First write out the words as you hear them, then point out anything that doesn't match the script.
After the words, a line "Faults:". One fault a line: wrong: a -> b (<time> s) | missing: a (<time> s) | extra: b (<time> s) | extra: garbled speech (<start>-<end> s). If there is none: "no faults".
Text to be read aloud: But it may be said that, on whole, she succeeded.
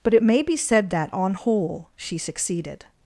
But it may be said that, on whole, she succeeded.
Faults:
no faults